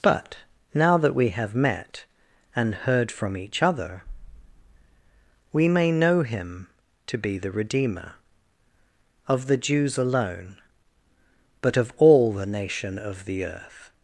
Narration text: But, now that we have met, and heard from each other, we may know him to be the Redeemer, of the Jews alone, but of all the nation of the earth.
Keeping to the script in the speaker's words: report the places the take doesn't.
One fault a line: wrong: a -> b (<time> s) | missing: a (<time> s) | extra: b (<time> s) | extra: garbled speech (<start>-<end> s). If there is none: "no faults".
no faults